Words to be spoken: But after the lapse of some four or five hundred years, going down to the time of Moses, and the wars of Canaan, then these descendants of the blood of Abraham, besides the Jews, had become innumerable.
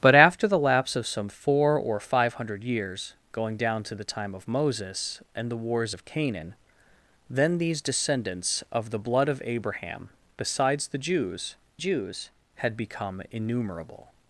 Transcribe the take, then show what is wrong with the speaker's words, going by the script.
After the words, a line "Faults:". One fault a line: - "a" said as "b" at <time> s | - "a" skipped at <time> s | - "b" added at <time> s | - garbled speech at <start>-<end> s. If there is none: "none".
But after the lapse of some four or five hundred years, going down to the time of Moses, and the wars of Canaan, then these descendants of the blood of Abraham, besides the Jews Jews, had become innumerable.
Faults:
- "Jews" added at 11.8 s